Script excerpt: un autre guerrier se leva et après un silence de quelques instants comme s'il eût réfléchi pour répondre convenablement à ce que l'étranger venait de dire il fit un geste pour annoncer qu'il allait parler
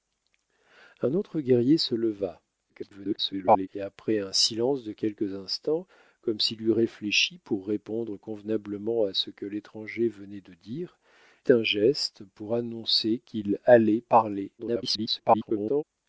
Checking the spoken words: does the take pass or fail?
fail